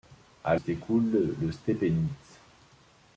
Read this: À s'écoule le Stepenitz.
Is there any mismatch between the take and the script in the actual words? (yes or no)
no